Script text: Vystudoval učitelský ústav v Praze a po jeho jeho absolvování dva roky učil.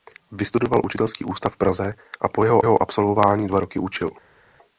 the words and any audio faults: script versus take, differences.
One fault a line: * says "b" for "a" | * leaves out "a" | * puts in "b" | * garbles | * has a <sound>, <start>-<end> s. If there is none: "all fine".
all fine